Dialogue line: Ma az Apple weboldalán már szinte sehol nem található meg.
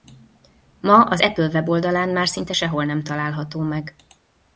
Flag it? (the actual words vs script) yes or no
no